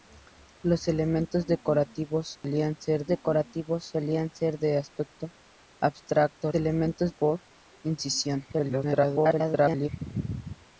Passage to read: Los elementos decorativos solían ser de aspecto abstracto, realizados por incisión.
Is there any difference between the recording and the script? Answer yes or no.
yes